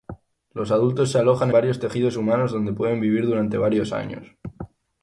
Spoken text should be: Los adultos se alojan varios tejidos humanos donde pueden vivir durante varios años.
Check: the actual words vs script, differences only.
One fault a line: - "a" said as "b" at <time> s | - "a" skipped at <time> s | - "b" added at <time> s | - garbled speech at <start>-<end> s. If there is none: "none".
none